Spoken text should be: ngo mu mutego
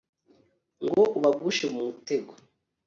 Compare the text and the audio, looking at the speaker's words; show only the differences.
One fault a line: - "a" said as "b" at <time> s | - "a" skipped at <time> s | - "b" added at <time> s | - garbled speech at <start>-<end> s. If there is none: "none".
- "ubagushe" added at 1.2 s